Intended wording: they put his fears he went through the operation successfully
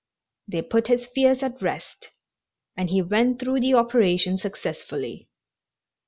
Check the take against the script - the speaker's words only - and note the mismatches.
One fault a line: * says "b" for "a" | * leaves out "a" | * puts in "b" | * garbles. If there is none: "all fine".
* puts in "at rest and"